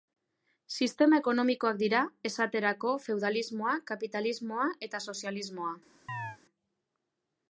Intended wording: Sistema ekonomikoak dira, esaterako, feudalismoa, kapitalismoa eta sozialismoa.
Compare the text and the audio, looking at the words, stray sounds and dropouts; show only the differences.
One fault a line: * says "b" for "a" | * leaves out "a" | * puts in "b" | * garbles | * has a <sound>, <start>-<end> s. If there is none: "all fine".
* has a chirp, 6.1-6.4 s